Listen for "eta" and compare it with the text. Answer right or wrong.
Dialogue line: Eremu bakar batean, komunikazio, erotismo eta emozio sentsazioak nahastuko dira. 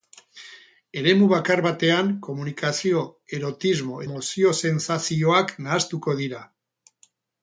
wrong